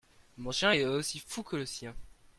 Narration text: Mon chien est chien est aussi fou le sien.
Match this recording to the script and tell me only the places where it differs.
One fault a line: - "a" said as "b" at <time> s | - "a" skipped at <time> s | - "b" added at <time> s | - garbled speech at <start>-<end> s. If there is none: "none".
- "chien est" skipped at 0.8 s
- "que" added at 1.4 s